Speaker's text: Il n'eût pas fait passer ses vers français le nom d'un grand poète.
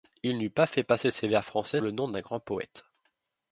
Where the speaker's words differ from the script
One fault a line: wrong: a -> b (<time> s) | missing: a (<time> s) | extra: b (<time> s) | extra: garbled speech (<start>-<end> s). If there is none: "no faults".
no faults